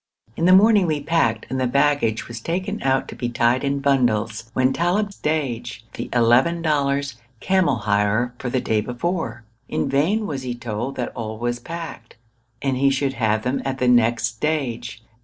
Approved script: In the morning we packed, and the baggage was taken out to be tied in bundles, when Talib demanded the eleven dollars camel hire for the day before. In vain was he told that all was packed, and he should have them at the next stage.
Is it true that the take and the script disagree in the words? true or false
true